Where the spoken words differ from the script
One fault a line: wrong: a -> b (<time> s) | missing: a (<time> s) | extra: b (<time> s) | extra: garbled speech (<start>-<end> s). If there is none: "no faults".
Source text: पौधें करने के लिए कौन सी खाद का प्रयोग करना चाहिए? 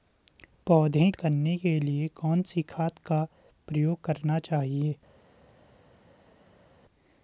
no faults